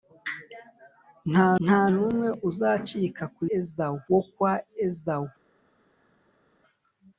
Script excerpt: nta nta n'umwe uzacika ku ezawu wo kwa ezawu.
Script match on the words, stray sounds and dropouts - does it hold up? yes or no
yes